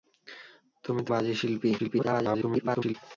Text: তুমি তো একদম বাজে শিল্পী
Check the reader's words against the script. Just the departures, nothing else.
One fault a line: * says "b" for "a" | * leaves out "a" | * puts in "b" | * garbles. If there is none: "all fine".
* leaves out "একদম"
* garbles